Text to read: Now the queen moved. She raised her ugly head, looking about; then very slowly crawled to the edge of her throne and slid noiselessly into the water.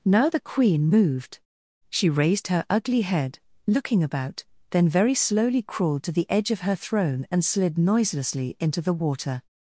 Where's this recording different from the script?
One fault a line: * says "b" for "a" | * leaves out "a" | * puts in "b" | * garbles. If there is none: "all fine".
all fine